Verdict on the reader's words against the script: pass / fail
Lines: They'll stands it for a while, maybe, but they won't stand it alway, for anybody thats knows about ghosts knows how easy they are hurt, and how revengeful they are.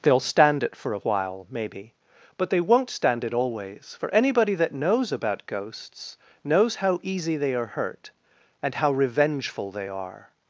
fail